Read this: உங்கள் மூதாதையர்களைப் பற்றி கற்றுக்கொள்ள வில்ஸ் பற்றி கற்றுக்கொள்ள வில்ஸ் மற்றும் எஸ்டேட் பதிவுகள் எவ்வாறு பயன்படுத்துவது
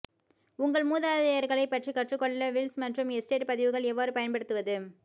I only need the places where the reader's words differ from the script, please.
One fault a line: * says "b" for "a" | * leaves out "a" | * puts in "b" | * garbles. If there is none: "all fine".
* leaves out "பற்றி கற்றுக்கொள்ள வில்ஸ்"